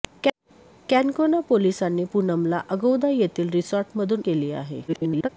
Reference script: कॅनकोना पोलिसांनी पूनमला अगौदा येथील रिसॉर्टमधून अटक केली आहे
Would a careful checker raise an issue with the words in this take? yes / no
yes